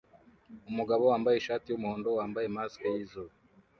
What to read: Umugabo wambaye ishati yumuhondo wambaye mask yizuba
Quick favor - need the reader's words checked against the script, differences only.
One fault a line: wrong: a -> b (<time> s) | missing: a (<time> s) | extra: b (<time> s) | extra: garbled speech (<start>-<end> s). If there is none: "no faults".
no faults